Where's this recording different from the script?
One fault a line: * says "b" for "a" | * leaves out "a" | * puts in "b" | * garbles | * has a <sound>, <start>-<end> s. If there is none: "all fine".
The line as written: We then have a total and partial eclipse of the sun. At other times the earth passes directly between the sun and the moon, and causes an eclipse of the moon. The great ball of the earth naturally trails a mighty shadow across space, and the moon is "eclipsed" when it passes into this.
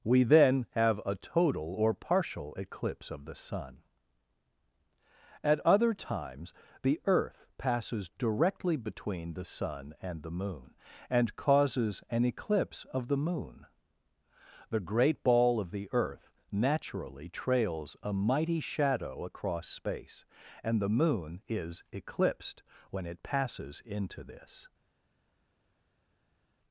* says "or" for "and"